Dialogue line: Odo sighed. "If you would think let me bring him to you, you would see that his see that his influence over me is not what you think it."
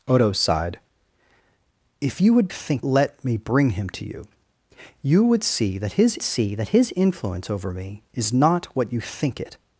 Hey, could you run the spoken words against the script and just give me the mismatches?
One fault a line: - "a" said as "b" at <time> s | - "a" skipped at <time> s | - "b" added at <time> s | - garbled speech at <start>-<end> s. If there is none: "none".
none